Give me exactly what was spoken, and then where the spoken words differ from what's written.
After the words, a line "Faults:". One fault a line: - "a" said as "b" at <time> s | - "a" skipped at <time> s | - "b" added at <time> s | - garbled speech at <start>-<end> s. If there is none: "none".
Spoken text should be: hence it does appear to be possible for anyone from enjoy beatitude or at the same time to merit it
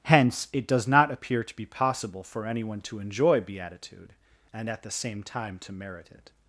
hence it does not appear to be possible for anyone to enjoy beatitude and at the same time to merit it
Faults:
- "not" added at 0.9 s
- "from" said as "to" at 2.8 s
- "or" said as "and" at 4.5 s